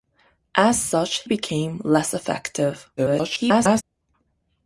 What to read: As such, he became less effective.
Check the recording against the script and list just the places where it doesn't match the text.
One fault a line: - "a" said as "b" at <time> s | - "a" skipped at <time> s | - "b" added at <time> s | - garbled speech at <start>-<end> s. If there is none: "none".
- "he" skipped at 1.3 s
- garbled speech at 3.0-3.8 s